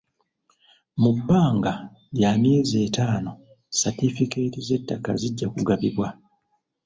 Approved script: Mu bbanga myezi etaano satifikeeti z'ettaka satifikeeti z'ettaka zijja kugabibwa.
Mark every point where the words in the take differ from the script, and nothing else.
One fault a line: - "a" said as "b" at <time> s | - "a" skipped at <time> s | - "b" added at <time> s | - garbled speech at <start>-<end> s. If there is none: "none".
- "lya" added at 2.2 s
- "satifikeeti z'ettaka" skipped at 5.1 s